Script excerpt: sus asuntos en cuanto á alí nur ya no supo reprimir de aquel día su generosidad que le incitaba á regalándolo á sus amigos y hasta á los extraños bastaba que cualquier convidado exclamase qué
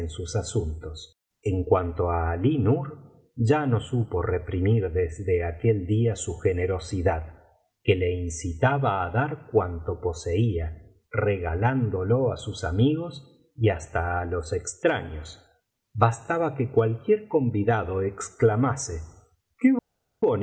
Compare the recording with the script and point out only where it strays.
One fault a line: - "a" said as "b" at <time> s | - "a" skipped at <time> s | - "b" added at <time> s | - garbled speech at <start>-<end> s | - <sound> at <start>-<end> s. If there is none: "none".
- "de" said as "desde" at 4.9 s
- "dar cuanto poseía" added at 9.1 s